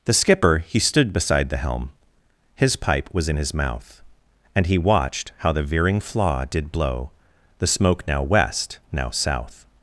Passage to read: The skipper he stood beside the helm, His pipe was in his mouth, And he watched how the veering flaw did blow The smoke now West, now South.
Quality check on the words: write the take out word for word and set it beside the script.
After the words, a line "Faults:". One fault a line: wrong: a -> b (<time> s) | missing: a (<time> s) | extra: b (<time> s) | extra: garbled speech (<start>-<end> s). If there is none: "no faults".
The skipper he stood beside the helm, His pipe was in his mouth, And he watched how the veering flaw did blow The smoke now West, now South.
Faults:
no faults